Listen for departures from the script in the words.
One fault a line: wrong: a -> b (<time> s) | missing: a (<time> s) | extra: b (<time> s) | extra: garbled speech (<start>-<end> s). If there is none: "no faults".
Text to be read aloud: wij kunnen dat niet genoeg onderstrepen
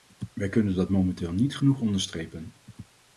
extra: momenteel (0.9 s)